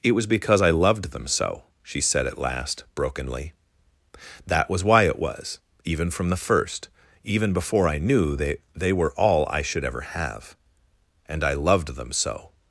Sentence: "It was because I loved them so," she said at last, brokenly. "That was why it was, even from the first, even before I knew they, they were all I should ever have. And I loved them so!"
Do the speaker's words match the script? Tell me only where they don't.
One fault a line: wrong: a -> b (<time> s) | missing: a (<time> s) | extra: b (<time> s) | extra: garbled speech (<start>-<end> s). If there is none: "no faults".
no faults